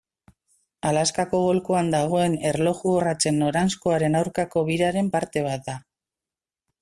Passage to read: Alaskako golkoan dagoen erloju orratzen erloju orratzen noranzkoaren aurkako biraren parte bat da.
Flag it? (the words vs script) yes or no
yes